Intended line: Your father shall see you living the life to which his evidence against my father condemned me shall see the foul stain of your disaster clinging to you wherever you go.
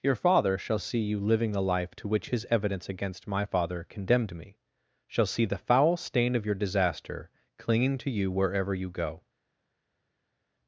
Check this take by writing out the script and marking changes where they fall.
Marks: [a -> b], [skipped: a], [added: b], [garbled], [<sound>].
Your father shall see you living the life to which his evidence against my father condemned me shall see the foul stain of your disaster clinging to you wherever you go.